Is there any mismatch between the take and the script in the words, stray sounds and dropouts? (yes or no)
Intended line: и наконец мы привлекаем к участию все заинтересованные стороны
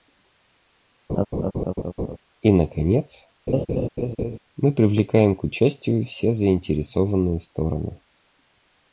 yes